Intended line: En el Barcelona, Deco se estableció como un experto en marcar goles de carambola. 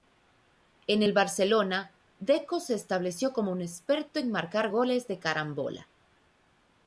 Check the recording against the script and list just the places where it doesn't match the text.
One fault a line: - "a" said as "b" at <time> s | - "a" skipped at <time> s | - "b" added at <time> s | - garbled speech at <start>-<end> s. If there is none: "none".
none